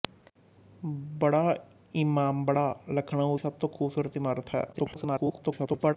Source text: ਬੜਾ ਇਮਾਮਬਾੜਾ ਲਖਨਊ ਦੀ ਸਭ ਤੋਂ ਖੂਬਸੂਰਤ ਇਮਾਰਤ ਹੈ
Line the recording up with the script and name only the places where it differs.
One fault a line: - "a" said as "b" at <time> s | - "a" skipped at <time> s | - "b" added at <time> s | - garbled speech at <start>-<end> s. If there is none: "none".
- "ਦੀ" skipped at 3.4 s
- garbled speech at 4.7-6.0 s